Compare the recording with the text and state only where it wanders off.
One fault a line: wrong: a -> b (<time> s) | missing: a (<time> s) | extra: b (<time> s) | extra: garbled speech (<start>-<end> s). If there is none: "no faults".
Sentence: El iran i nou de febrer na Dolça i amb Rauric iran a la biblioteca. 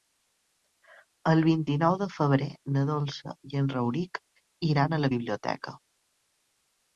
wrong: iran -> vint (1.5 s)
wrong: amb -> en (3.6 s)